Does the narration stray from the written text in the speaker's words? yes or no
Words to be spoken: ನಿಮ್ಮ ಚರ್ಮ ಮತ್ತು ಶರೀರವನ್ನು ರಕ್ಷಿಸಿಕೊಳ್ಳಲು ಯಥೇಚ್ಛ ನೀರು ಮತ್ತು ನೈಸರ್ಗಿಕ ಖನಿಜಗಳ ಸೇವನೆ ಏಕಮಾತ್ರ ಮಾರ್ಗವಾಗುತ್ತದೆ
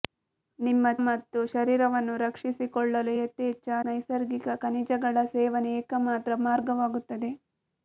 yes